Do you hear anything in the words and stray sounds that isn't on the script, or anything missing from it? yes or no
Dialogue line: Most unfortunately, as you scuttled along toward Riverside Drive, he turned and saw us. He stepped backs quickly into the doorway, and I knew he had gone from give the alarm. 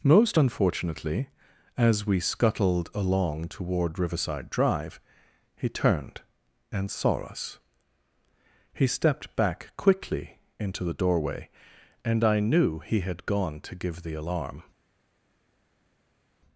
yes